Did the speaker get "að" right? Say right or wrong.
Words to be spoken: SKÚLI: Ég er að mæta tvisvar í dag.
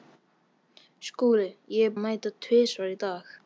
right